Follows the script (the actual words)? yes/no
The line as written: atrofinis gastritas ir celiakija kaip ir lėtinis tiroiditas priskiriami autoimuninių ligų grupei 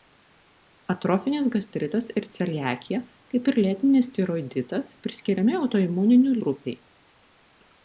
no